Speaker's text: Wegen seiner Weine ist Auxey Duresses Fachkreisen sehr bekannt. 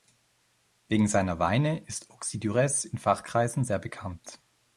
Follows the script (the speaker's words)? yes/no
no